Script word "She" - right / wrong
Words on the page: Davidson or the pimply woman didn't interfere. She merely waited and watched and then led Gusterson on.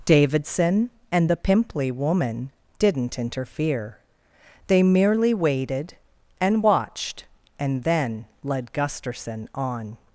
wrong